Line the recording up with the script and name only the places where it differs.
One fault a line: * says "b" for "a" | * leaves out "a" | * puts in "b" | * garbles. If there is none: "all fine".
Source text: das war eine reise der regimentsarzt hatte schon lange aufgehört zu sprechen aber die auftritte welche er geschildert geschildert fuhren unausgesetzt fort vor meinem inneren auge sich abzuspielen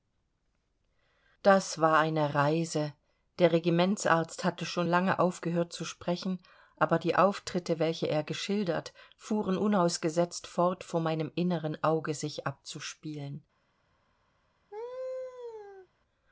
* leaves out "geschildert"